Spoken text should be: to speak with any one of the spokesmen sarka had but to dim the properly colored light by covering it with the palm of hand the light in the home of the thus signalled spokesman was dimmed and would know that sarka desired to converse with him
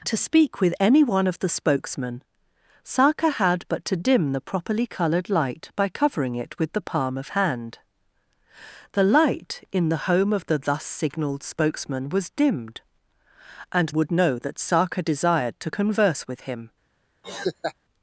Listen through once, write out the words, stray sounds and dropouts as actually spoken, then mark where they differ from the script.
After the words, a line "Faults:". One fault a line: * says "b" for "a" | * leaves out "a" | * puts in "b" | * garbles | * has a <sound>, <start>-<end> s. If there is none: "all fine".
to speak with any one of the spokesmen sarka had but to dim the properly colored light by covering it with the palm of hand the light in the home of the thus signalled spokesman was dimmed and would know that sarka desired to converse with him
Faults:
* has a laugh, 17.2-17.7 s